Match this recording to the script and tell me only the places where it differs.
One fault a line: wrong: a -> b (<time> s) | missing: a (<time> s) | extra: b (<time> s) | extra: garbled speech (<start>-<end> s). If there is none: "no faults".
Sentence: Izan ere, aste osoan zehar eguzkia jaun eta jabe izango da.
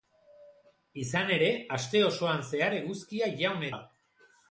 missing: eta jabe izango (3.7 s)